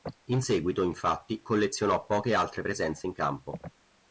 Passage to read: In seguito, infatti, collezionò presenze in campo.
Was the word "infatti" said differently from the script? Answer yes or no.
no